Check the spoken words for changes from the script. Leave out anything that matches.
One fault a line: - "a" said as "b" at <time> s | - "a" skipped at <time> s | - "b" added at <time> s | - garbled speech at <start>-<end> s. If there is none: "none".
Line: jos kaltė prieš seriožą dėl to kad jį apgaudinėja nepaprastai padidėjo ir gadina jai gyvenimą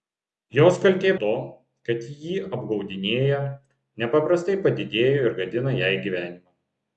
- "prieš seriožą dėl" skipped at 1.1 s